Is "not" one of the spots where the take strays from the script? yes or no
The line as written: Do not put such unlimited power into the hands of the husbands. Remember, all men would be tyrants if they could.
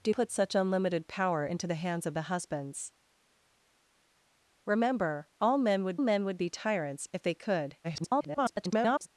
yes